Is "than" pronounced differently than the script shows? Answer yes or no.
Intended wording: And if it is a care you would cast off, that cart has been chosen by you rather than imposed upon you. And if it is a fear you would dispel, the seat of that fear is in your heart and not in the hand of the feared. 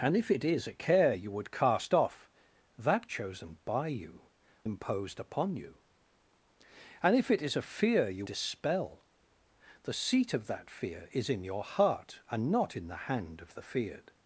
yes